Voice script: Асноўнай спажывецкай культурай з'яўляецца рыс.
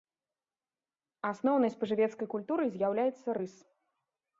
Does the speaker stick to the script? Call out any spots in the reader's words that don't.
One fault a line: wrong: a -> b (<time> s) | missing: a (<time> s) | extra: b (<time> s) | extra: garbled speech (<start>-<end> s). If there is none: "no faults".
no faults